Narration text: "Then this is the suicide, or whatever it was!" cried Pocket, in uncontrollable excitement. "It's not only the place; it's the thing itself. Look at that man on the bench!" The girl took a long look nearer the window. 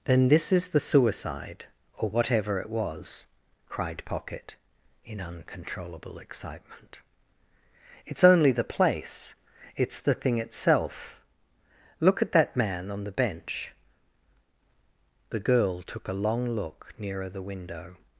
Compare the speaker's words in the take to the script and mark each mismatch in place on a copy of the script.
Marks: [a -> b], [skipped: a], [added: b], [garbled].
"Then this is the suicide, or whatever it was!" cried Pocket, in uncontrollable excitement. "It's [skipped: not] only the place; it's the thing itself. Look at that man on the bench!" The girl took a long look nearer the window.